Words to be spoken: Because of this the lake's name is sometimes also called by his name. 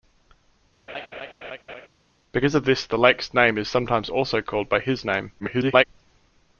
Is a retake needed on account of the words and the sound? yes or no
yes